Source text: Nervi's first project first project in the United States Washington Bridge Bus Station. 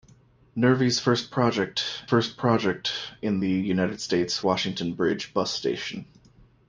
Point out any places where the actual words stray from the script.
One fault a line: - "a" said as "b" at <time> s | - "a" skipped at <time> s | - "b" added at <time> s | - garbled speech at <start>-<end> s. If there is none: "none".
none